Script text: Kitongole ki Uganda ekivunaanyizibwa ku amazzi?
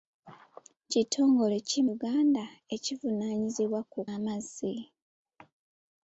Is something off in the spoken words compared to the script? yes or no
no